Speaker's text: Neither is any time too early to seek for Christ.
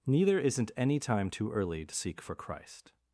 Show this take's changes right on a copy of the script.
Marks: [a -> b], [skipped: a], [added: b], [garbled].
Neither [is -> isn't] any time too early to seek for Christ.